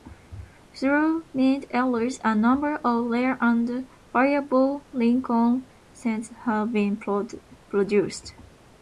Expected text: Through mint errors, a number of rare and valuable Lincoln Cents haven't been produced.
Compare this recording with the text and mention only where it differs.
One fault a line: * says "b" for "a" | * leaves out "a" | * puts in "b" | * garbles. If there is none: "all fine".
* says "have" for "haven't"